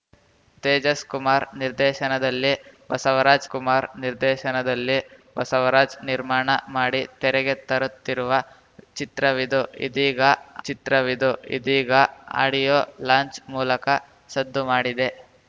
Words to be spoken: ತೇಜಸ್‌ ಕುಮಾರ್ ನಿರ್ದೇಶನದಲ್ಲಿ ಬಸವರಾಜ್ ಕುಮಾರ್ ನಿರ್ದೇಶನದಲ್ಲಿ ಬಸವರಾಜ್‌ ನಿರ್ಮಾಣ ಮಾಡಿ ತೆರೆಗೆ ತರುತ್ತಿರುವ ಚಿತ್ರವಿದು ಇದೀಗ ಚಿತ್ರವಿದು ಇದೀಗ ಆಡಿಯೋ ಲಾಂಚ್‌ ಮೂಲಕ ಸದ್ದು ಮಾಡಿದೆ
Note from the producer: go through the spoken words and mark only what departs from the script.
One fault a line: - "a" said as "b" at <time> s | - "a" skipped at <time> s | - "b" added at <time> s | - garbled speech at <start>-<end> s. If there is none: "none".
none